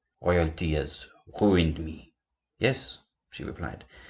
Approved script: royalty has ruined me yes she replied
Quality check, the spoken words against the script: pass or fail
pass